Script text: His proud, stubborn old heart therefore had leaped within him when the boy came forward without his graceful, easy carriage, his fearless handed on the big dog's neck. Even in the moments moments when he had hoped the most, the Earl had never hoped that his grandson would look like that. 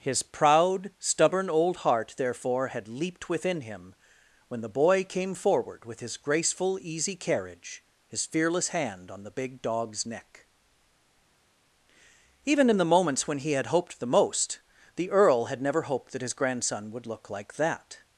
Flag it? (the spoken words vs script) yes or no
yes